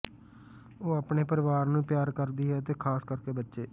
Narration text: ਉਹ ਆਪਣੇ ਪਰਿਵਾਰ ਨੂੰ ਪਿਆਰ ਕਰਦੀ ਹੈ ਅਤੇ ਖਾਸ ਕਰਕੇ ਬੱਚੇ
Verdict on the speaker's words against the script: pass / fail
pass